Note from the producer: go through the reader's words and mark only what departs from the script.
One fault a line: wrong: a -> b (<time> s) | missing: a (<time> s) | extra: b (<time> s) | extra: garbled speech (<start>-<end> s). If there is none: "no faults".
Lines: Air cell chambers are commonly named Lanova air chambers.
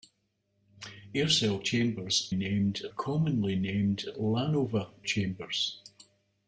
wrong: are -> named (2.3 s)
missing: air (4.9 s)